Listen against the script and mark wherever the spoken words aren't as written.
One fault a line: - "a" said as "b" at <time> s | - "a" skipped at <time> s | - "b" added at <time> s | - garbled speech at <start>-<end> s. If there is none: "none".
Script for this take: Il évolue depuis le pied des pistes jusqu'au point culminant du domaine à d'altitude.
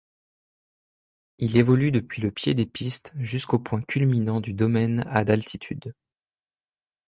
none